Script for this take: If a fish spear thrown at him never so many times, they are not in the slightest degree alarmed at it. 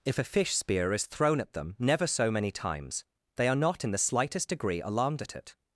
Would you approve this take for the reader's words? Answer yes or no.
no